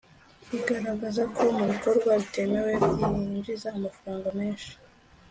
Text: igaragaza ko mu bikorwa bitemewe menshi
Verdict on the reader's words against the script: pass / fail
fail